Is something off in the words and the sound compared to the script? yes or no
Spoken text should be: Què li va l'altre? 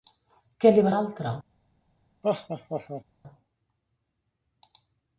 yes